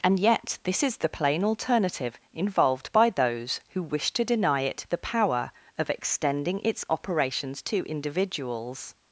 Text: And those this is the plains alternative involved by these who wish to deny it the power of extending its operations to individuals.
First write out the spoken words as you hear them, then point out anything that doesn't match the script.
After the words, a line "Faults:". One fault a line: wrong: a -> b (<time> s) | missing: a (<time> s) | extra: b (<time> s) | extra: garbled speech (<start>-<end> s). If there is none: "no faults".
And yet this is the plain alternative involved by those who wish to deny it the power of extending its operations to individuals.
Faults:
wrong: those -> yet (0.2 s)
wrong: plains -> plain (1.1 s)
wrong: these -> those (3.1 s)